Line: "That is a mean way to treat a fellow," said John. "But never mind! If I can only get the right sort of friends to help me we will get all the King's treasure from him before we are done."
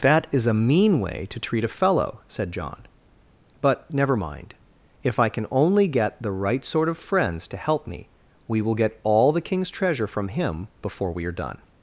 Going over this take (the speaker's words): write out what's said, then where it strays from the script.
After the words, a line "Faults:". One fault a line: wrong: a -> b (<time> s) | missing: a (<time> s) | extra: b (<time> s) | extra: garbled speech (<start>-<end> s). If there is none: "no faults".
"That is a mean way to treat a fellow," said John. "But never mind! If I can only get the right sort of friends to help me we will get all the King's treasure from him before we are done."
Faults:
no faults